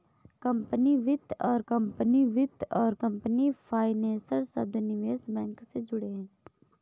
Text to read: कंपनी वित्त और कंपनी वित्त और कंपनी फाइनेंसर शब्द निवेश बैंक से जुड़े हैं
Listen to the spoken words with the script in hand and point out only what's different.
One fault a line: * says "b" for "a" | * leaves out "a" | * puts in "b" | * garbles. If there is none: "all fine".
all fine